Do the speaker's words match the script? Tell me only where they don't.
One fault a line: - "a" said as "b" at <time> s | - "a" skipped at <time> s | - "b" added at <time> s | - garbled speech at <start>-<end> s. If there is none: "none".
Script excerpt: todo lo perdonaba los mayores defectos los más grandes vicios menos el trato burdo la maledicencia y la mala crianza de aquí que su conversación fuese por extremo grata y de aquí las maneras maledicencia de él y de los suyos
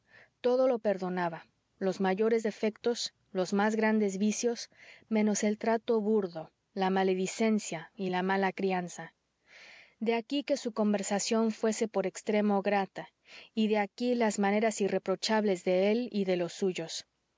- "maledicencia" said as "irreprochables" at 14.8 s